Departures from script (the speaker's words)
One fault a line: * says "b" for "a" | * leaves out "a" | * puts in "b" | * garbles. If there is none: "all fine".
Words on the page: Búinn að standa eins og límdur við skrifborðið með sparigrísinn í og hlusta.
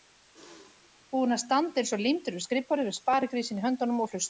* puts in "höndunum"